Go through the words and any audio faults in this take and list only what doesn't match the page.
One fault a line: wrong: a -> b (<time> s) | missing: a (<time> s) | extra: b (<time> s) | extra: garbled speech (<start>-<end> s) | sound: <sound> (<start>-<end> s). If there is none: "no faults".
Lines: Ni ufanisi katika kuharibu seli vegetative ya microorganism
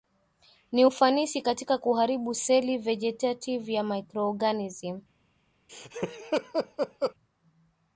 sound: laugh (5.7-7.1 s)